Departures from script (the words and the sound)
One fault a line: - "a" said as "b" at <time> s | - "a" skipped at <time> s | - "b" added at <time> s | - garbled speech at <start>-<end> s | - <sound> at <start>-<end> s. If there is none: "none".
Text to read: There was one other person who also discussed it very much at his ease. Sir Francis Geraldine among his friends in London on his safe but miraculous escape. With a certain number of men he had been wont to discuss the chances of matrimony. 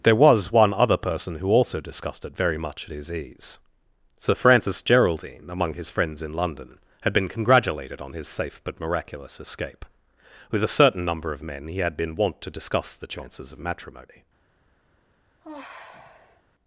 - "had been congratulated" added at 7.0 s
- sigh at 15.4-16.4 s